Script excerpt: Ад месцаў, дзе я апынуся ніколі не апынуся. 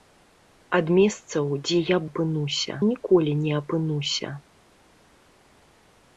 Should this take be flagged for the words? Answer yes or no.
no